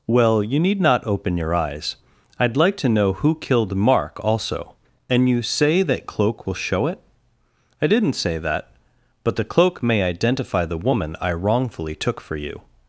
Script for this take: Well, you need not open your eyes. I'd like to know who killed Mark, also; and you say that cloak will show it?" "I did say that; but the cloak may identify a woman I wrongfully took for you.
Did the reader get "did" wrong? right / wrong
wrong